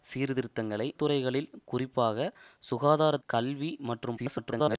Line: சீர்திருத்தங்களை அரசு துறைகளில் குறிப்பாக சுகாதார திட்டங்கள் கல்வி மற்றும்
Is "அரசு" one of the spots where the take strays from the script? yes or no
yes